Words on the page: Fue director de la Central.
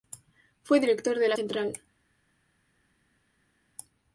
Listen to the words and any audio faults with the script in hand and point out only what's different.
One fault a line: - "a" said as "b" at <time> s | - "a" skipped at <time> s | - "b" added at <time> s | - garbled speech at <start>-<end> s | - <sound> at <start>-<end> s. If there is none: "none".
none